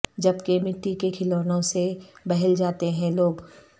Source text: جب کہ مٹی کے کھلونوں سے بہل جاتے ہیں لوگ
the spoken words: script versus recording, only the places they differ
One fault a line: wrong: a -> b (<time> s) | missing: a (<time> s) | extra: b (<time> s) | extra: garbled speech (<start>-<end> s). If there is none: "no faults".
no faults